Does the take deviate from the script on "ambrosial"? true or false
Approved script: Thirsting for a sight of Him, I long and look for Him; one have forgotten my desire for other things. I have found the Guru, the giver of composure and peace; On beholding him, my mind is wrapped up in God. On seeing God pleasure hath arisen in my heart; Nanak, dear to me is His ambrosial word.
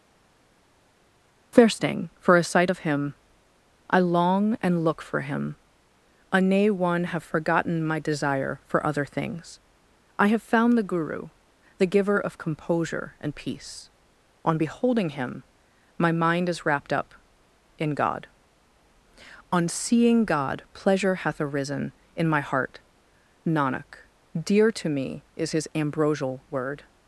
false